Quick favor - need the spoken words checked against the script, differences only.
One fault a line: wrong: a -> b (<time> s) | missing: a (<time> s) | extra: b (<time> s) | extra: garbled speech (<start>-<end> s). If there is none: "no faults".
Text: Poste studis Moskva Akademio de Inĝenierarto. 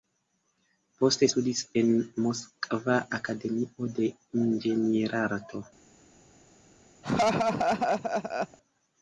extra: en (1.8 s)